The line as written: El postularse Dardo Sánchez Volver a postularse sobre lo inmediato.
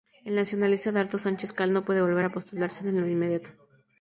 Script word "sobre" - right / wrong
wrong